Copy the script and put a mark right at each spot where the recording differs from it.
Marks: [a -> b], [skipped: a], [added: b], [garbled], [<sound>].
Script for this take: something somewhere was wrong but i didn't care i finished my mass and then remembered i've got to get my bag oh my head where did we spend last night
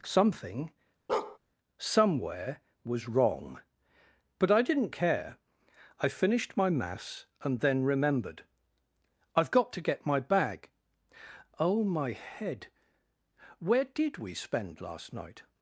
something [bark] somewhere was wrong but i didn't care i finished my mass and then remembered i've got to get my bag oh my head where did we spend last night